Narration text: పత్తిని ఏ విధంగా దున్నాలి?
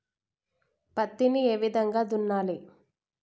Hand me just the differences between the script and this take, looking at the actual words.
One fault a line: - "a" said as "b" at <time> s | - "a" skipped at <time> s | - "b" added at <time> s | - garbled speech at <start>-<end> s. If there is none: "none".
none